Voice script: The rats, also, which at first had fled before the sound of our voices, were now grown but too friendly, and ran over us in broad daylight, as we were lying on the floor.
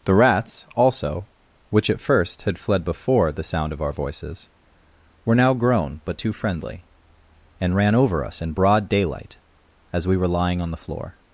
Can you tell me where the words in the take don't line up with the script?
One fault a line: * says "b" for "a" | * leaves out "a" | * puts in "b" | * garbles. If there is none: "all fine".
all fine